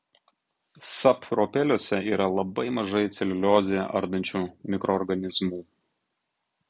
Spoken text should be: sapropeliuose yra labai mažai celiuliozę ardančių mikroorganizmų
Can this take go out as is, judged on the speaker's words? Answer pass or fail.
pass